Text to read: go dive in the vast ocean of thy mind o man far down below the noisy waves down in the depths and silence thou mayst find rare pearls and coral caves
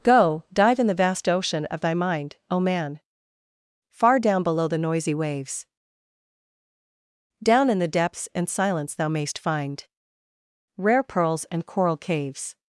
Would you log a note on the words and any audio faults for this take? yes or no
no